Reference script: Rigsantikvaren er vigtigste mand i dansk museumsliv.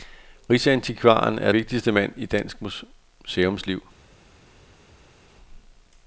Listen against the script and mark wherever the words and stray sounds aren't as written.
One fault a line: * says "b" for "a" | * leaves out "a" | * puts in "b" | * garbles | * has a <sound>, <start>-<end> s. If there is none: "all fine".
all fine